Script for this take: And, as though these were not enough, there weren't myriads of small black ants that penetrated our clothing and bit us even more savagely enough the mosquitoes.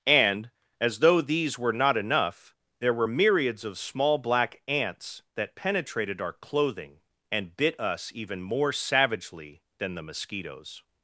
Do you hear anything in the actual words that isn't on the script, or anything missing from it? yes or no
yes